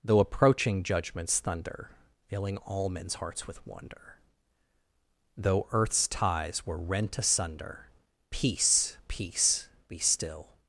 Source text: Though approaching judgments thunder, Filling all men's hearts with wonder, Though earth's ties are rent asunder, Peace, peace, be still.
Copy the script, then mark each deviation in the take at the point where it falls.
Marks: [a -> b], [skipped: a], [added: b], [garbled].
Though approaching judgments thunder, Filling all men's hearts with wonder, Though earth's ties [are -> were] rent asunder, Peace, peace, be still.